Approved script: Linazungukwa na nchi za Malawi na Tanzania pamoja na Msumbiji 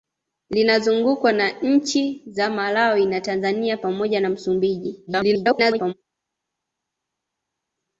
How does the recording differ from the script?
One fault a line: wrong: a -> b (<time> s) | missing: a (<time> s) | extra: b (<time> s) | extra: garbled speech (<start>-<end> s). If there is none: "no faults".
extra: garbled speech (5.1-5.9 s)